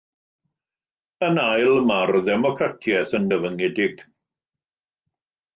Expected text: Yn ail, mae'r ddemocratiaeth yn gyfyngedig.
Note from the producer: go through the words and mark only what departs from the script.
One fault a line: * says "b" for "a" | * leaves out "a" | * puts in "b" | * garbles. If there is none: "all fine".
all fine